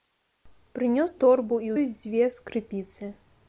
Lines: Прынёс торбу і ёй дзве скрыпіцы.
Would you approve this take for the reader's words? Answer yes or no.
yes